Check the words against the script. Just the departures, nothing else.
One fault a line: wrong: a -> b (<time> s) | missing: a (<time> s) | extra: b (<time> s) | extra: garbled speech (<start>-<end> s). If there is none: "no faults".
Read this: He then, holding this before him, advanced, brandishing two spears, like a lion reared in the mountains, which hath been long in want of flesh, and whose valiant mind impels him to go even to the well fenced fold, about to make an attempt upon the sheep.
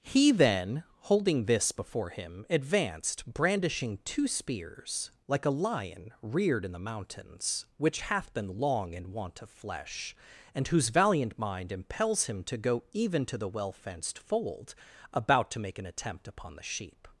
no faults